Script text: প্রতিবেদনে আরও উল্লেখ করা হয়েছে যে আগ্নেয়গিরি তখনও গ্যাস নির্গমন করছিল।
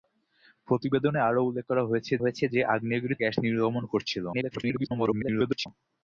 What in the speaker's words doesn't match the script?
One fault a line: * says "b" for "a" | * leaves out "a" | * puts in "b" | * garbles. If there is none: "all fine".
* puts in "হয়েছে"
* leaves out "তখনও"
* garbles